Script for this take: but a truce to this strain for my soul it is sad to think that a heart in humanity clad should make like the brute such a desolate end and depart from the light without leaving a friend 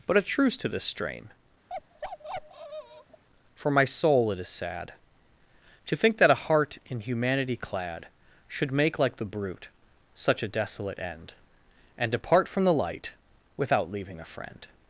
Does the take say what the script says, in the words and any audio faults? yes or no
no